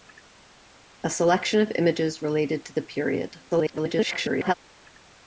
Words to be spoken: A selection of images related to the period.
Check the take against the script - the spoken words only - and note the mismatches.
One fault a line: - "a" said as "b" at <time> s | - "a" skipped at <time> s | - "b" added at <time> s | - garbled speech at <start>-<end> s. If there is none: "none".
- garbled speech at 3.5-4.5 s